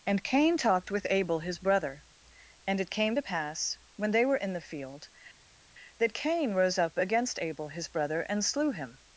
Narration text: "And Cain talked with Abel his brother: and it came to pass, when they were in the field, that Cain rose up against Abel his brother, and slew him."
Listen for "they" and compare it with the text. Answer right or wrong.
right